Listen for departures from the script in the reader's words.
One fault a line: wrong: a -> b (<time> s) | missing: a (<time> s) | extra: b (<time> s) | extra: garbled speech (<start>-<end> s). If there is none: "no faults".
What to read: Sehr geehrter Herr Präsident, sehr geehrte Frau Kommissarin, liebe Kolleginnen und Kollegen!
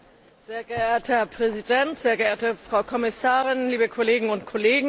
no faults